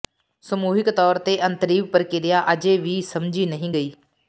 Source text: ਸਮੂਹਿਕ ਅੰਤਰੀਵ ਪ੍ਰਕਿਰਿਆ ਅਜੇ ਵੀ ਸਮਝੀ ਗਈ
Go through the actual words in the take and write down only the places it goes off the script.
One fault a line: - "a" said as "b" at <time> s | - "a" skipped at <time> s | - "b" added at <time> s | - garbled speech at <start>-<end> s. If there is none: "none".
- "ਤੌਰ ਤੇ" added at 0.9 s
- "ਨਹੀਂ" added at 3.5 s